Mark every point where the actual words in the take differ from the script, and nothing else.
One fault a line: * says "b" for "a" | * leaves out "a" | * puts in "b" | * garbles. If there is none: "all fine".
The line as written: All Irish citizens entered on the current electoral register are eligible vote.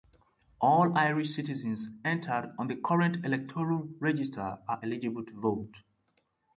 * puts in "to"